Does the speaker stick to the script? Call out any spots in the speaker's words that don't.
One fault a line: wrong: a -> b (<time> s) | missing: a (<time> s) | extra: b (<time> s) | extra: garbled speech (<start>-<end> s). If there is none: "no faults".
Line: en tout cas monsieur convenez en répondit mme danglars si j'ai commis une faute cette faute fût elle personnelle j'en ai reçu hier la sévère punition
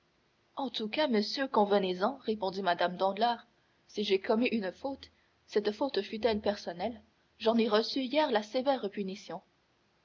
no faults